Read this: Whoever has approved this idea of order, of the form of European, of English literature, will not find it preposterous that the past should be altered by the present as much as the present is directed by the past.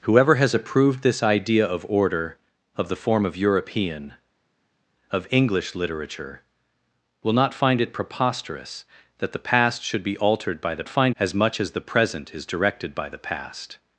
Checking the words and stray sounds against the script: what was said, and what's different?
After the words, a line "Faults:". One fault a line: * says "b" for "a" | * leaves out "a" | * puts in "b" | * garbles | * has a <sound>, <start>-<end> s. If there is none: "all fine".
Whoever has approved this idea of order, of the form of European, of English literature, will not find it preposterous that the past should be altered by the find as much as the present is directed by the past.
Faults:
* says "find" for "present"